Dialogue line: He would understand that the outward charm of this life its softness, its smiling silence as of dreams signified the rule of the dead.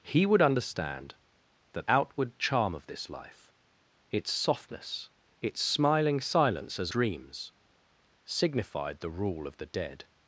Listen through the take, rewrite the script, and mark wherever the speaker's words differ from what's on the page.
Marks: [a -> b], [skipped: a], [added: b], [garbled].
He would understand that [skipped: the] outward charm of this life its softness, its smiling silence as [skipped: of] dreams signified the rule of the dead.